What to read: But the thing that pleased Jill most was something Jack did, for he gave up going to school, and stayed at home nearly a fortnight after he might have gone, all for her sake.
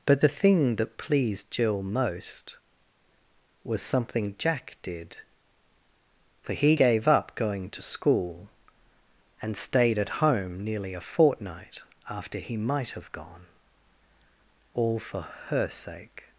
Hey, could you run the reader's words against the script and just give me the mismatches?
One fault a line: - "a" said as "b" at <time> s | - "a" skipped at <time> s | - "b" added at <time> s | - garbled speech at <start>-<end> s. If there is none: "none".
none